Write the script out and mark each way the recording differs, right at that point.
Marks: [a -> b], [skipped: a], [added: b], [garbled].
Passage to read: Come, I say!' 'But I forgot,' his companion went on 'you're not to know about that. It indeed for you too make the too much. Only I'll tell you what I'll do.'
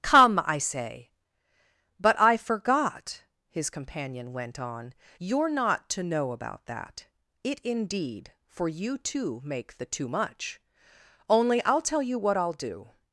Come, I say!' 'But I forgot,' his companion went on 'you're not to know about that. It indeed for you too make the too much. Only I'll tell you what I'll do.'